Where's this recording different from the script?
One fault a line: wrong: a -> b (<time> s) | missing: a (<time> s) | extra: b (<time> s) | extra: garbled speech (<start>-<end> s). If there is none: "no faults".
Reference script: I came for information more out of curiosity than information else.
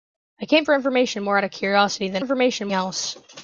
no faults